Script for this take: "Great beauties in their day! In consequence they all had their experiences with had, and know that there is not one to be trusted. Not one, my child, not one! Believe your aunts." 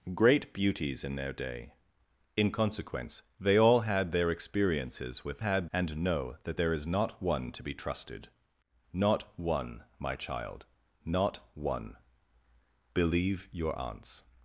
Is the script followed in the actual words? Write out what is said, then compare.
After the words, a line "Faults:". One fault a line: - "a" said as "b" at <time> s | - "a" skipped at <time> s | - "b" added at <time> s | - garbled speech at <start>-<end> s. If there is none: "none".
"Great beauties in their day! In consequence they all had their experiences with had, and know that there is not one to be trusted. Not one, my child, not one! Believe your aunts."
Faults:
none